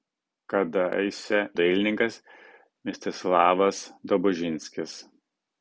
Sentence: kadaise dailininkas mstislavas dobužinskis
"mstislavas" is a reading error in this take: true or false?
false